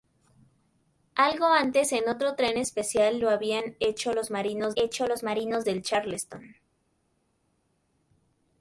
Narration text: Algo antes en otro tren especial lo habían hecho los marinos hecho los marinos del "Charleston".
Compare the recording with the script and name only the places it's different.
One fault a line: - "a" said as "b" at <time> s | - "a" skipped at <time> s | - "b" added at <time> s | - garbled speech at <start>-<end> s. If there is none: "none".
none